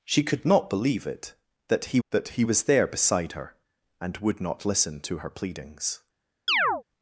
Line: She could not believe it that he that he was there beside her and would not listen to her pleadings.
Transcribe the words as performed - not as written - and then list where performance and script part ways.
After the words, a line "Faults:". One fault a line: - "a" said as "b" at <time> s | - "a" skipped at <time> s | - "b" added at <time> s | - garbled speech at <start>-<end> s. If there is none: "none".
She could not believe it that he that he was there beside her and would not listen to her pleadings.
Faults:
none